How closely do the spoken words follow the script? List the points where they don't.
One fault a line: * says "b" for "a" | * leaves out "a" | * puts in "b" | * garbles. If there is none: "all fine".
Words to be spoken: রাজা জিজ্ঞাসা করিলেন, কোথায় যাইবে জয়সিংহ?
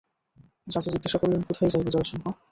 all fine